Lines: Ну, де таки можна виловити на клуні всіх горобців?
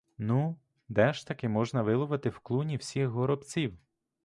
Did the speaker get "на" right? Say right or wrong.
wrong